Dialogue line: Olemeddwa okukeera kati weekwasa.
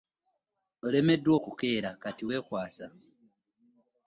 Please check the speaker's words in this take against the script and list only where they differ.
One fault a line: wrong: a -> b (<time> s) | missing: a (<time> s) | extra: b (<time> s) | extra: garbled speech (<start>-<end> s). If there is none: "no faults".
no faults